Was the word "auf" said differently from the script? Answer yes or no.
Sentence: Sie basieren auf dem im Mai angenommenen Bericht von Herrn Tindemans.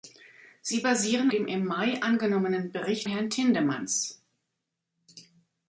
yes